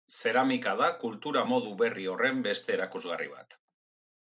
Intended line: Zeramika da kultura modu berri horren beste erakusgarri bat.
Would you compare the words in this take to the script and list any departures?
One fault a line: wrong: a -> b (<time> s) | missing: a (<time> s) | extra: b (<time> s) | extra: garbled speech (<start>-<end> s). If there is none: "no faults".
no faults